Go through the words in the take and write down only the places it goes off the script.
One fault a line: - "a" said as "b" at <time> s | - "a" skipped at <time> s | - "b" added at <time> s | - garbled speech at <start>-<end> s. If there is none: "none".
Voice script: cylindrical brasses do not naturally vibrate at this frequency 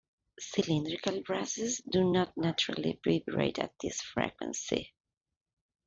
none